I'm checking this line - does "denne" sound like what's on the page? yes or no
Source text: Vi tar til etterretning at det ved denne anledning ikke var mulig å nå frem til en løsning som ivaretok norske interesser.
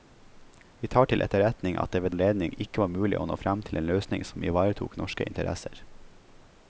no